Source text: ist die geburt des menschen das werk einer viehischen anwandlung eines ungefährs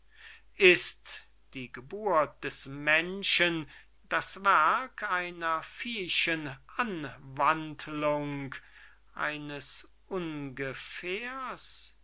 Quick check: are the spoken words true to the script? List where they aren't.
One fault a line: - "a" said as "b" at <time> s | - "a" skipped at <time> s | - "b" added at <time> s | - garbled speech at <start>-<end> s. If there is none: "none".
none